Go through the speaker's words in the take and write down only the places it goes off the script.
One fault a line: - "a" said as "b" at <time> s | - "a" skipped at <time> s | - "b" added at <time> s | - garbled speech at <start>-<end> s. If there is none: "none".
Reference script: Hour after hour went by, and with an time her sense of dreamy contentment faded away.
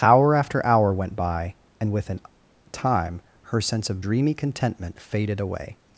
none